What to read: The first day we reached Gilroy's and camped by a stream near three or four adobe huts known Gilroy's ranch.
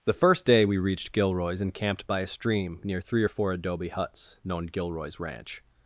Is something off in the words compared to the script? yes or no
no